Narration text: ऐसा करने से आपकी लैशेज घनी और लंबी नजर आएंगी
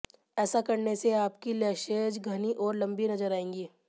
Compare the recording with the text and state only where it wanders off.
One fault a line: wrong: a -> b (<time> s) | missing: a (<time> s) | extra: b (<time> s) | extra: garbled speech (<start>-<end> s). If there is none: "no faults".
no faults